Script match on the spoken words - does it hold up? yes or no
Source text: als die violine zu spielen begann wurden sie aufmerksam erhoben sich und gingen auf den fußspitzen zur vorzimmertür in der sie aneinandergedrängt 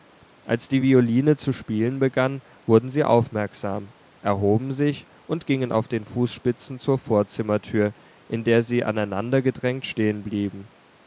yes